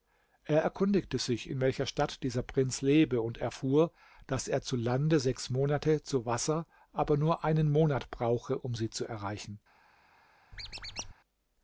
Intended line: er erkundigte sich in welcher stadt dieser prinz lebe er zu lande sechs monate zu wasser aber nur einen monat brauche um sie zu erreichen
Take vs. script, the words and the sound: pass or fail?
fail